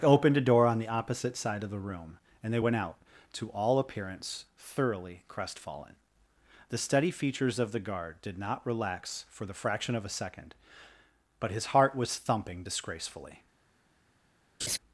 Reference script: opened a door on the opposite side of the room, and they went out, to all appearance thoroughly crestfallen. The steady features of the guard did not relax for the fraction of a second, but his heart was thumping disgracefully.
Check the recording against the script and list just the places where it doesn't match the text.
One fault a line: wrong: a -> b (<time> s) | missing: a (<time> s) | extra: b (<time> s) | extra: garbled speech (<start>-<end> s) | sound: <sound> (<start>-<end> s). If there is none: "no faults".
sound: laugh (14.6-14.8 s)